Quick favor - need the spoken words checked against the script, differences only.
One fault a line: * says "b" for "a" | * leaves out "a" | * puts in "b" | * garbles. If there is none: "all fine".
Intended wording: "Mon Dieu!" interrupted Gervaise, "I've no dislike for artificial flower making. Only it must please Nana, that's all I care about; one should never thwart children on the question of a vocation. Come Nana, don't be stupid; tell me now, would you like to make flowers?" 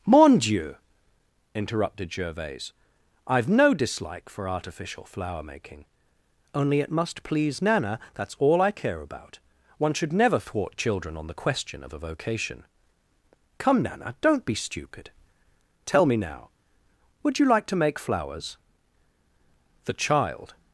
* puts in "The child"